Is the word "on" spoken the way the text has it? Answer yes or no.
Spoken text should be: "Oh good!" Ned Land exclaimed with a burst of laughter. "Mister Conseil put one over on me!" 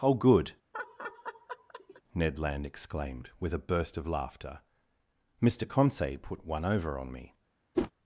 yes